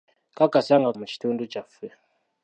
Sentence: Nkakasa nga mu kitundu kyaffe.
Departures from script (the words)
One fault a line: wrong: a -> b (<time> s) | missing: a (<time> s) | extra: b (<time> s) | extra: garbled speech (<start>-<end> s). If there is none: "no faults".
no faults